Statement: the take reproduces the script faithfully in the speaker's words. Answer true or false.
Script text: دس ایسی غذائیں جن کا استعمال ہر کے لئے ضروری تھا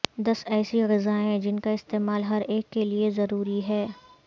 false